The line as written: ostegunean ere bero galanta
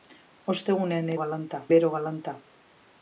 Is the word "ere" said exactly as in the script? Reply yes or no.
no